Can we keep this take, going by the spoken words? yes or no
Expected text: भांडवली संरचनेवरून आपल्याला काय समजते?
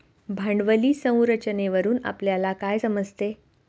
yes